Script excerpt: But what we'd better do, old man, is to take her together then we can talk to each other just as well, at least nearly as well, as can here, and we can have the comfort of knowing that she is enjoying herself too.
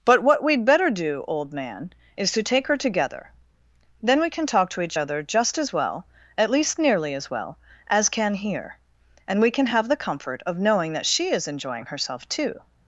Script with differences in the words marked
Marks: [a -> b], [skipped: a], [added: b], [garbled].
But what we'd better do, old man, is to take her together then we can talk to each other just as well, at least nearly as well, as can here, and we can have the comfort of knowing that she is enjoying herself too.